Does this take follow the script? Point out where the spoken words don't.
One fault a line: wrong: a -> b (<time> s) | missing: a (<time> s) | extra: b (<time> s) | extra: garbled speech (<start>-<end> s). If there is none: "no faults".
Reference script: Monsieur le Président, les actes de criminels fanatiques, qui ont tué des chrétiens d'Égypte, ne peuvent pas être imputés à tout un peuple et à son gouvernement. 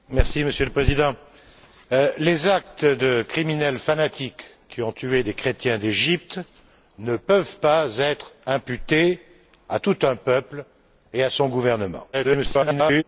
extra: garbled speech (12.1-13.0 s)